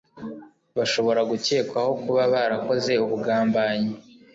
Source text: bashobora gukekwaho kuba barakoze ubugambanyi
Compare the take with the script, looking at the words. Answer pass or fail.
pass